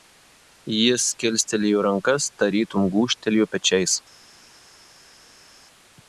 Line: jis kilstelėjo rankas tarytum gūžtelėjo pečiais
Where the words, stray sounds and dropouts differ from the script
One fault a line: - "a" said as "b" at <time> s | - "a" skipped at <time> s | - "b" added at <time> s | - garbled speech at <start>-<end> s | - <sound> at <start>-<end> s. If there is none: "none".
none